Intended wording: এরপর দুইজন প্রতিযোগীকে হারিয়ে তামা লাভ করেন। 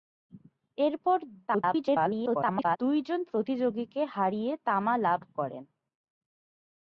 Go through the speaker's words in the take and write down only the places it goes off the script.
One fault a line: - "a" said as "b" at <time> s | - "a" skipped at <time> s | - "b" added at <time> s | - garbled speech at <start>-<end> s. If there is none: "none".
- garbled speech at 1.5-2.8 s